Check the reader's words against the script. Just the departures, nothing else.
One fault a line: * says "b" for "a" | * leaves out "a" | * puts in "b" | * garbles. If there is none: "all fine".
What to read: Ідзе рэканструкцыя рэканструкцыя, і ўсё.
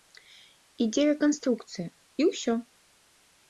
* leaves out "рэканструкцыя"